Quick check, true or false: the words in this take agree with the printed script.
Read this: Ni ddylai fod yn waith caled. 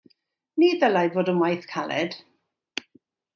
true